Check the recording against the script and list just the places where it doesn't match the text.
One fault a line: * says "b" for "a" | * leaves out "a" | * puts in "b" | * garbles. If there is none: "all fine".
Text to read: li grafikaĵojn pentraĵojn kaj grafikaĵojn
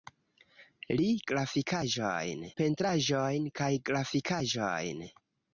all fine